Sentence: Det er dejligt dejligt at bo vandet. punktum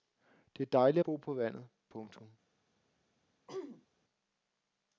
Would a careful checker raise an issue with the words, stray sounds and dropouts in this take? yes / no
yes